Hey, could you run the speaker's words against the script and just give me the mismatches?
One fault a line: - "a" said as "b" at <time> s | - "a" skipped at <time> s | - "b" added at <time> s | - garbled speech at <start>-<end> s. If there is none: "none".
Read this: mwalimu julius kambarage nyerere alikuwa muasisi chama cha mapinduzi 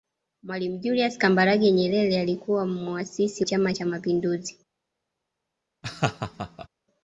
none